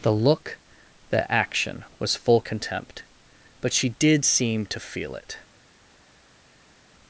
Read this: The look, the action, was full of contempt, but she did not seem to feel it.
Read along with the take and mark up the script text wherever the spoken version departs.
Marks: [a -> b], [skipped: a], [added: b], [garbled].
The look, the action, was full [skipped: of] contempt, but she did [skipped: not] seem to feel it.